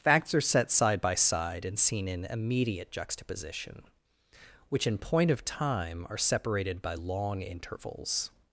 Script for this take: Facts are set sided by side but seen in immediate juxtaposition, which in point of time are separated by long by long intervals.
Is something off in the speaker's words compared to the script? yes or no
yes